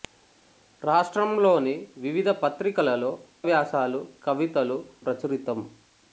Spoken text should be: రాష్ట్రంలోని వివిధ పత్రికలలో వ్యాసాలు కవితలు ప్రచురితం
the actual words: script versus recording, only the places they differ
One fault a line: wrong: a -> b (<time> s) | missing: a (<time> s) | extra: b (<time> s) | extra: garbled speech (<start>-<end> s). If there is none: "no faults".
no faults